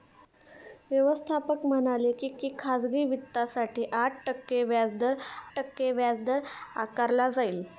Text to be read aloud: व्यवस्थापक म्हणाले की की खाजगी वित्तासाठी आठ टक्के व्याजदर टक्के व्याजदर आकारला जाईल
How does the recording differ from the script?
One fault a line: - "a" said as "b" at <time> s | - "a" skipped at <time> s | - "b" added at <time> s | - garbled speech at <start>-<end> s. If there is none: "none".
none